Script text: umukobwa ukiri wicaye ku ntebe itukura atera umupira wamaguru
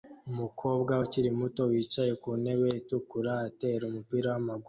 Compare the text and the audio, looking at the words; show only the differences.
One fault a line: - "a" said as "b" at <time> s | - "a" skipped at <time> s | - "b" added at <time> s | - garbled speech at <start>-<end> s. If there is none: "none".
- "muto" added at 1.4 s